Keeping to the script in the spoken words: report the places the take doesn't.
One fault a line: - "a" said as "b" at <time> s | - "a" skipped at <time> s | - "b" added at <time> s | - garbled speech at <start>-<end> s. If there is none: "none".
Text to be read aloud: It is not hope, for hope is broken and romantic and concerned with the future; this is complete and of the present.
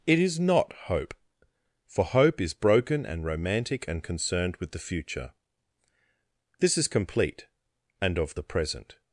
none